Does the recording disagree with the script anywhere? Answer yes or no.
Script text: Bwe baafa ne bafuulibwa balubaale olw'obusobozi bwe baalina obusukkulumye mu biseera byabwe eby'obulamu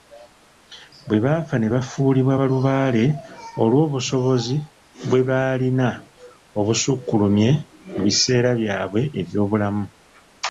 no